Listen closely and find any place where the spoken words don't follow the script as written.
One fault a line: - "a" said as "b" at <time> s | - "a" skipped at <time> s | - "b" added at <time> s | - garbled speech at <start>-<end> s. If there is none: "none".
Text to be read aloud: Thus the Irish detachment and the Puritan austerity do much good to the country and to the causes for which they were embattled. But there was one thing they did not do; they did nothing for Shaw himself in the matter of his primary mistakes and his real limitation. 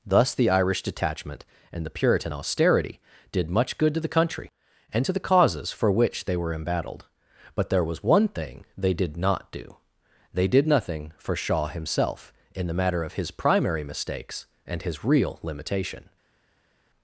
- "do" said as "did" at 3.3 s